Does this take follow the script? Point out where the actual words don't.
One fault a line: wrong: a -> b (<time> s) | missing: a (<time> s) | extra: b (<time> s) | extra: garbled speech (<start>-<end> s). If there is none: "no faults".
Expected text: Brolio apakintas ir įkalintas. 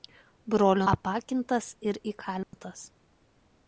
no faults